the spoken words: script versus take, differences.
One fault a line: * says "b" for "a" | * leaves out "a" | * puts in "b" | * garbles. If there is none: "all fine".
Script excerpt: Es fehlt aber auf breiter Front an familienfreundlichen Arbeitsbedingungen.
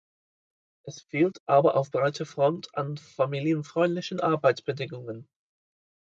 all fine